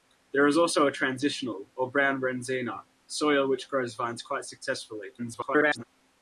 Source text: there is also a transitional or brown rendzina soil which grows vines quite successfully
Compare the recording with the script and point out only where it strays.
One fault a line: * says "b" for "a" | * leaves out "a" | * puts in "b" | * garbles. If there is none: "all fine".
* garbles